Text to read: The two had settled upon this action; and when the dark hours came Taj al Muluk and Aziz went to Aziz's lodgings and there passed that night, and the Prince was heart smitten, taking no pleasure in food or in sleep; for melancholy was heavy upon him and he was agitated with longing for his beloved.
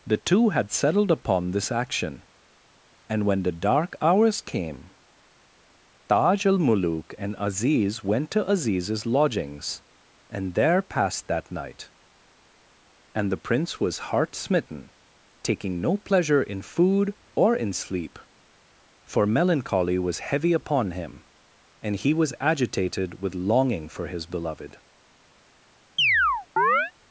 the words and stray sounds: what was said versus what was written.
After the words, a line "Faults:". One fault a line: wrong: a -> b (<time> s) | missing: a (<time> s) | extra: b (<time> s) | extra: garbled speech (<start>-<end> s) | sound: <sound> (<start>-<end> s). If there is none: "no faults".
The two had settled upon this action; and when the dark hours came Taj al Muluk and Aziz went to Aziz's lodgings and there passed that night, and the Prince was heart smitten, taking no pleasure in food or in sleep; for melancholy was heavy upon him and he was agitated with longing for his beloved.
Faults:
sound: chirp (26.0-26.9 s)